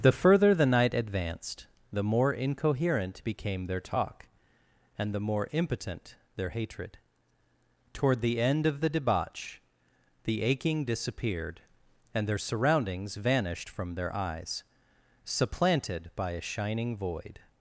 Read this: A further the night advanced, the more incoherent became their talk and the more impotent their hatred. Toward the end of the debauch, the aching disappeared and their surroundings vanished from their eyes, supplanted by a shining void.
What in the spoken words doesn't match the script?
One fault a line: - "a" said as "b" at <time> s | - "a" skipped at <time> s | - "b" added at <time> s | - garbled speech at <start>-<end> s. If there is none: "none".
- "A" said as "The" at 0.0 s